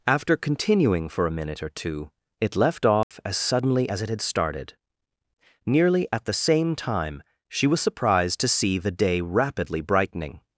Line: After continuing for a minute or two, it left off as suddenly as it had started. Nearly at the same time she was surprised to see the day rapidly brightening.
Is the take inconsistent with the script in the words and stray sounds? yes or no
yes